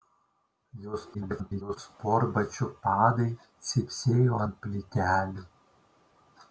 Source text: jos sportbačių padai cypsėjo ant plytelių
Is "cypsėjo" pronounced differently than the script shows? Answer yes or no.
no